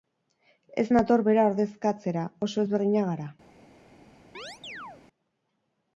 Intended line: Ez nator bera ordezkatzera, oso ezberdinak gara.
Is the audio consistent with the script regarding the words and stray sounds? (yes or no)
no